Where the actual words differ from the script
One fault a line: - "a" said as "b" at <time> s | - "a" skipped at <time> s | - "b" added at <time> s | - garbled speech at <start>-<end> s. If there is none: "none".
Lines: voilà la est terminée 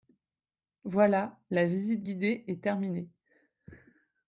- "visite guidée" added at 1.7 s